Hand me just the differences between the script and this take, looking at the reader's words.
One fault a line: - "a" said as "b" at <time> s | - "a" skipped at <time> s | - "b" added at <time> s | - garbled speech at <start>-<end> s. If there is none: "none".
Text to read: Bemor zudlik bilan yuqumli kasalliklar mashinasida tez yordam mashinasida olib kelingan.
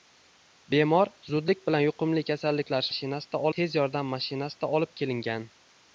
none